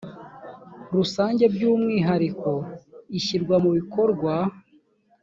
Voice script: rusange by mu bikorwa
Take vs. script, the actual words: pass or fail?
fail